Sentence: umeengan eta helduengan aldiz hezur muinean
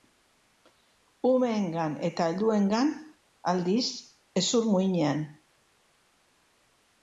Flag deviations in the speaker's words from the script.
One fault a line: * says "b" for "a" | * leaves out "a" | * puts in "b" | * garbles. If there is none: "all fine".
all fine